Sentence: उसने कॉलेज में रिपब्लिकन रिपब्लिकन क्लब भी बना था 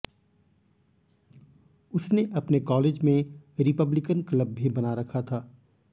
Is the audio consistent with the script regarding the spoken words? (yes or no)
no